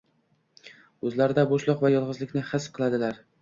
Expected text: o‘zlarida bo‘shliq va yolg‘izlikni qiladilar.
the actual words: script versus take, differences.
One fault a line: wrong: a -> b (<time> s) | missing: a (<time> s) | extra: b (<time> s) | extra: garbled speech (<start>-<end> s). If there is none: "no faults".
extra: his (2.6 s)